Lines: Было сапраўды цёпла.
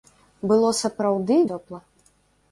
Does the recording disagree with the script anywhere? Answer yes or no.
no